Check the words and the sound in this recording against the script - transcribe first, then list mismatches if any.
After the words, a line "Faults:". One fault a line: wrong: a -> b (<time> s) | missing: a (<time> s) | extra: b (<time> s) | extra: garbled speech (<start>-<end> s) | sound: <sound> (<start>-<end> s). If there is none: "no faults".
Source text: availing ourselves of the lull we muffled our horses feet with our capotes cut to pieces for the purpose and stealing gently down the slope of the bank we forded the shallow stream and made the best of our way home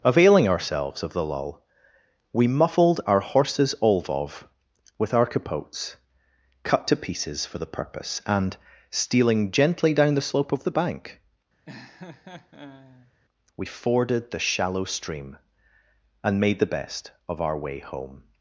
availing ourselves of the lull we muffled our horses olvov with our capotes cut to pieces for the purpose and stealing gently down the slope of the bank we forded the shallow stream and made the best of our way home
Faults:
wrong: feet -> olvov (3.8 s)
sound: laugh (11.7-13.1 s)